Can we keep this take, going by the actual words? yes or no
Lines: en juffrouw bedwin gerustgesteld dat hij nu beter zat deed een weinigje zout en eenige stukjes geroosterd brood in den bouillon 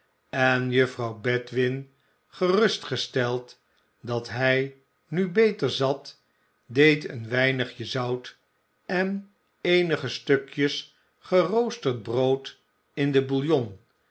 yes